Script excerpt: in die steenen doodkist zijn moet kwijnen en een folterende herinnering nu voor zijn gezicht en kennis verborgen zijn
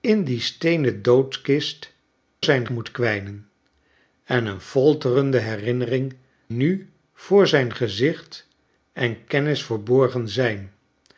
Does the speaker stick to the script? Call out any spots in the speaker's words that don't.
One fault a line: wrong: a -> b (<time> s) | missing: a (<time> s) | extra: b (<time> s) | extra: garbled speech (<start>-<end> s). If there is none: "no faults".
no faults